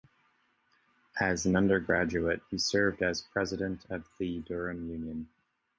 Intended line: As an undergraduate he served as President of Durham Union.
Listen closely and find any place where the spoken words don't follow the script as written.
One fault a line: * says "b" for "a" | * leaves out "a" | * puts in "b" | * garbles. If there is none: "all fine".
* puts in "the"